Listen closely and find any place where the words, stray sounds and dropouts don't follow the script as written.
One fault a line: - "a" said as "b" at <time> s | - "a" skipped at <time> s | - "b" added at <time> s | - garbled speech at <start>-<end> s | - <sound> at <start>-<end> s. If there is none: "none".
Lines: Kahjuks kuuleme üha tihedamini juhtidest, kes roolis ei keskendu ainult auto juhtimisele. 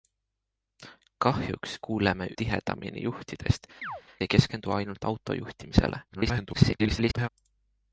- "üha" skipped at 2.3 s
- "kes roolis" skipped at 3.7 s
- chirp at 3.8-4.0 s
- garbled speech at 6.1-7.3 s